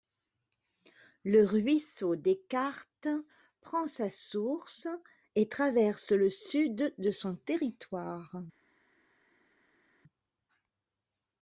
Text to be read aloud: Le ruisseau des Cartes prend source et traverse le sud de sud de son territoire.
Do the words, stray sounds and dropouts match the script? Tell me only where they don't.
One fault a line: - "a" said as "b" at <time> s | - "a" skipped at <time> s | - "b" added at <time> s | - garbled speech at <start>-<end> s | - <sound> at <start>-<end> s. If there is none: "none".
- "sa" added at 3.9 s
- "sud de" skipped at 7.1 s